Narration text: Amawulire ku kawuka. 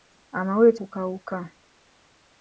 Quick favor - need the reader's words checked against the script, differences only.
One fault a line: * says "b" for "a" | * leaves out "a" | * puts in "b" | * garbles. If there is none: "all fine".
all fine